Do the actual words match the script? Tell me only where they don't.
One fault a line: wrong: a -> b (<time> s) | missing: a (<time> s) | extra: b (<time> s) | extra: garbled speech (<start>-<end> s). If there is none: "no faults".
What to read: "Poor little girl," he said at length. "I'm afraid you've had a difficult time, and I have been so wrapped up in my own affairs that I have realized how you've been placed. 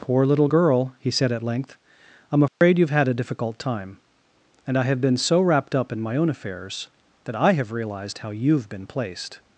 no faults